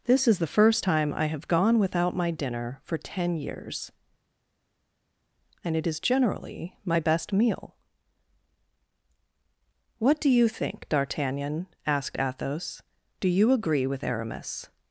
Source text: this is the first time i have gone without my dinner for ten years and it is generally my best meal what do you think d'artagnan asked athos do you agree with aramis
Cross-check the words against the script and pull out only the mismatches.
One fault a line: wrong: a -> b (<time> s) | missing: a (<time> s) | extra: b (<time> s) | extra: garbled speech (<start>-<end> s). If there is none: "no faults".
no faults